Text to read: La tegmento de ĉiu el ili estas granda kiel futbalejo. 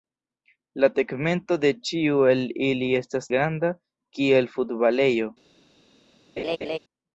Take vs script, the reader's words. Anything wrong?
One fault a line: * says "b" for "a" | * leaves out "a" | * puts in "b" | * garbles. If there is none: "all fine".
all fine